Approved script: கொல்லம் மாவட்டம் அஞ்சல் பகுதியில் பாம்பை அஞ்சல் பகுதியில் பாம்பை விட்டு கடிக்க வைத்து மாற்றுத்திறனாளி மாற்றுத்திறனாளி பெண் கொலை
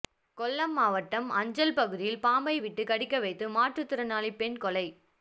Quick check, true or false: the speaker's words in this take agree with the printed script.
false